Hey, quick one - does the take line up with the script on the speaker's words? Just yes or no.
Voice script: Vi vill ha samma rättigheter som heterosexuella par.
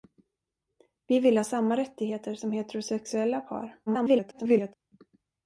no